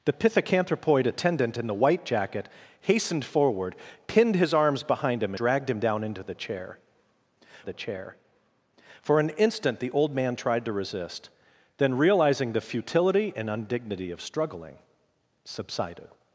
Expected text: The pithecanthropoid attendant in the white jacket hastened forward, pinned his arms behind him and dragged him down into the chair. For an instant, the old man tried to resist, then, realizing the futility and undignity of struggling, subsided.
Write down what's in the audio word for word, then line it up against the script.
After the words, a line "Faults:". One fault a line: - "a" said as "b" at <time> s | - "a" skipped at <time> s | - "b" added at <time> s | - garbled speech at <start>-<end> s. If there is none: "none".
The pithecanthropoid attendant in the white jacket hastened forward, pinned his arms behind him dragged him down into the chair the chair. For an instant, the old man tried to resist, then, realizing the futility and undignity of struggling, subsided.
Faults:
- "and" skipped at 5.3 s
- "the chair" added at 7.6 s